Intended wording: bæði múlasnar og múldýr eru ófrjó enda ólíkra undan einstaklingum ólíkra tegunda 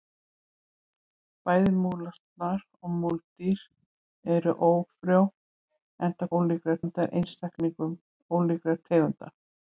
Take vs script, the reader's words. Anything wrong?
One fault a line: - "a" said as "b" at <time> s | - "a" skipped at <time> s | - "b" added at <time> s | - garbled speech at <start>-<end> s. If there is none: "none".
none